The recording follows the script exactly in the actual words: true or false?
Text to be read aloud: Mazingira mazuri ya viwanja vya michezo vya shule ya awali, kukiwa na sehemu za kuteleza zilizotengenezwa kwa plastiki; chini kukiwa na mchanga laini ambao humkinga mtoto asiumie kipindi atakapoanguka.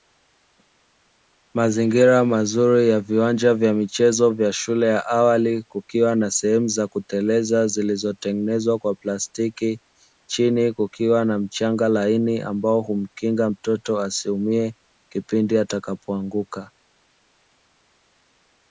true